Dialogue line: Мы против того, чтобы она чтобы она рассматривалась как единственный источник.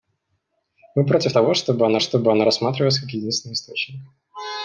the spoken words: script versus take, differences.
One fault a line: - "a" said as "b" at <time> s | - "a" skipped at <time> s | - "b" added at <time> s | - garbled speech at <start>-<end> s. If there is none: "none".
none